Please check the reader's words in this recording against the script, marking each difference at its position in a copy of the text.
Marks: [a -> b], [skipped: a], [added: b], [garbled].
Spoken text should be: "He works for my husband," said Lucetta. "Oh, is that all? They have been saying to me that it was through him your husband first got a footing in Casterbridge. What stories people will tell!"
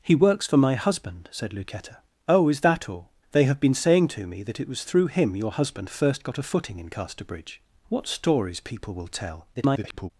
"He works for my husband," said Lucetta. "Oh, is that all? They have been saying to me that it was through him your husband first got a footing in Casterbridge. What stories people will tell!" [garbled]